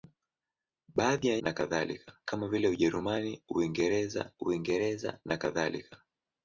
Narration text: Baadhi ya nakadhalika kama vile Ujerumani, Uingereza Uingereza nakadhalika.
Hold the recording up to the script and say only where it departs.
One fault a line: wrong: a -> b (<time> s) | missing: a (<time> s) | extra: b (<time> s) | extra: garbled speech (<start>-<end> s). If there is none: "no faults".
no faults